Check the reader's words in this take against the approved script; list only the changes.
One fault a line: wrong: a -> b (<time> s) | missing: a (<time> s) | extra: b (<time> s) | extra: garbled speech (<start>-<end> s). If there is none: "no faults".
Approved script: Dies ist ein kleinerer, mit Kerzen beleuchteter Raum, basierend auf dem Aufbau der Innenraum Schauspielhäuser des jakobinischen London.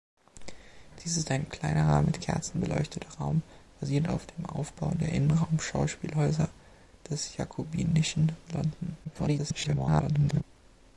extra: garbled speech (9.0-10.4 s)